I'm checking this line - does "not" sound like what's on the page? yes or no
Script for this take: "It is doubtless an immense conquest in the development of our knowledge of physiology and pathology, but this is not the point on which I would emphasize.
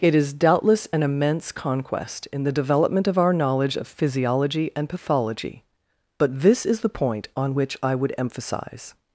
no